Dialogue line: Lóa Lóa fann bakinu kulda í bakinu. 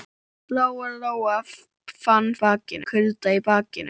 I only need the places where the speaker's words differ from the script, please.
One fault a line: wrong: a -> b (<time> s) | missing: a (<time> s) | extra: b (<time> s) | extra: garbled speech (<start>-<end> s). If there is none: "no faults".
no faults